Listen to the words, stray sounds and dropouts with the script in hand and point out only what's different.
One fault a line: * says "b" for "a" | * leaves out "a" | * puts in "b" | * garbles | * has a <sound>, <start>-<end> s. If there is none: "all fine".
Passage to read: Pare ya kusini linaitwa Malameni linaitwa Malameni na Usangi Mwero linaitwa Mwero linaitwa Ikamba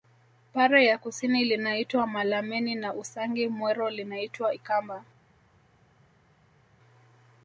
* leaves out "linaitwa Malameni"
* leaves out "Mwero linaitwa"